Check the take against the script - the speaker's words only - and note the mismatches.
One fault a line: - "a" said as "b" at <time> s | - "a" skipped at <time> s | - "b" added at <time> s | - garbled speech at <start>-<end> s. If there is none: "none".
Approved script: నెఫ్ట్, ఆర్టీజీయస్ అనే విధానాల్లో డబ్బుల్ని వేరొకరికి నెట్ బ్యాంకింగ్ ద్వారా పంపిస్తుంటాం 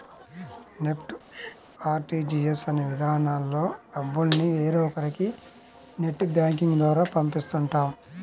none